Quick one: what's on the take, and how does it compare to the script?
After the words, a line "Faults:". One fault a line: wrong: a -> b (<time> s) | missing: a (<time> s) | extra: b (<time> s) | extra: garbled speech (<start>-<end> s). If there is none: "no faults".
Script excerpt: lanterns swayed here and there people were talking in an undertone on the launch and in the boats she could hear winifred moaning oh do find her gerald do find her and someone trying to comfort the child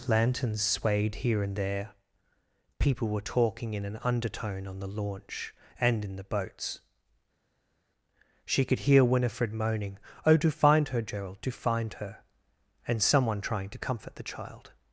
lanterns swayed here and there people were talking in an undertone on the launch and in the boats she could hear winifred moaning oh do find her gerald do find her and someone trying to comfort the child
Faults:
no faults